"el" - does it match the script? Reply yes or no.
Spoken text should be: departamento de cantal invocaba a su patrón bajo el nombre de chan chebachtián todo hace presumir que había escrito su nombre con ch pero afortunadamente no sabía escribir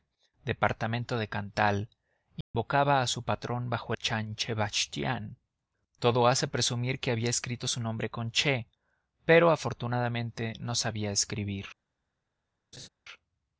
no